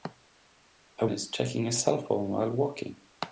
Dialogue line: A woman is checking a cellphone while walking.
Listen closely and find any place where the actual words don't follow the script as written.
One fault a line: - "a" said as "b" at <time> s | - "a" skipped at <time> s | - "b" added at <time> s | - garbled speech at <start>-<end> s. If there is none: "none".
- "woman" skipped at 1.1 s